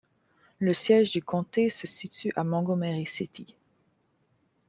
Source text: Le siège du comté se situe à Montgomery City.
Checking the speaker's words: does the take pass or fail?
pass